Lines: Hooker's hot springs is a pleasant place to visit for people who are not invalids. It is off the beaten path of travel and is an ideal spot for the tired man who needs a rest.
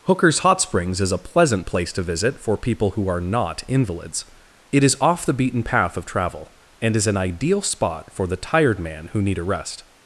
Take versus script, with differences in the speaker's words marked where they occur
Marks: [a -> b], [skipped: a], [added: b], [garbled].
Hooker's hot springs is a pleasant place to visit for people who are not invalids. It is off the beaten path of travel and is an ideal spot for the tired man who [needs -> need] a rest.